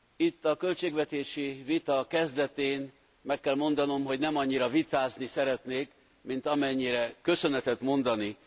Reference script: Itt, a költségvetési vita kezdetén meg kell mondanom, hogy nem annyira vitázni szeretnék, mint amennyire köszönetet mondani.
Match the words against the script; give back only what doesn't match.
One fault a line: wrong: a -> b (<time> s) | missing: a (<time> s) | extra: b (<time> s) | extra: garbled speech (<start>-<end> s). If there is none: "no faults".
no faults